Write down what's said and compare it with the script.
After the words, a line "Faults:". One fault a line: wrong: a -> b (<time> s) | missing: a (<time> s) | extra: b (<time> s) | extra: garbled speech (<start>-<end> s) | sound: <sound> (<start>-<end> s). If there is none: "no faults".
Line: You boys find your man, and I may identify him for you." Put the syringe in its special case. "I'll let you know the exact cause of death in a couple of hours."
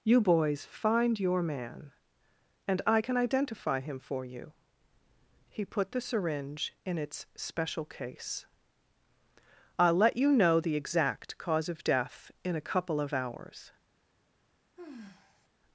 You boys find your man, and I can identify him for you." He put the syringe in its special case. "I'll let you know the exact cause of death in a couple of hours."
Faults:
wrong: may -> can (3.0 s)
extra: He (5.5 s)
sound: sigh (14.8-15.5 s)